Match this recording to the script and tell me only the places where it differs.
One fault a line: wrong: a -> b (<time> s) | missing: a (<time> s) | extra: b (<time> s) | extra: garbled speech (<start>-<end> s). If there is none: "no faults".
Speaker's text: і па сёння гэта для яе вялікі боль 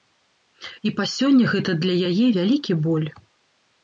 no faults